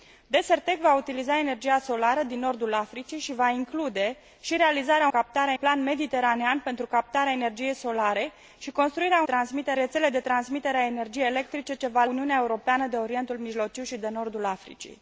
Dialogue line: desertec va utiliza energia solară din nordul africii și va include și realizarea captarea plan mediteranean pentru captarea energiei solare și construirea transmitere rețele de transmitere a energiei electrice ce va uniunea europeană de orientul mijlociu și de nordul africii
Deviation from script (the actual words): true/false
false